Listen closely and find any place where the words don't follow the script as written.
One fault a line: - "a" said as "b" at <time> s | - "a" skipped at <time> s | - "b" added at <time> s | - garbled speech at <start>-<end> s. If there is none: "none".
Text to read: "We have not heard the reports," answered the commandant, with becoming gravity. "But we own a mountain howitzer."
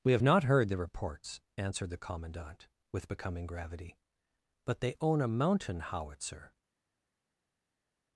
- "we" said as "they" at 4.8 s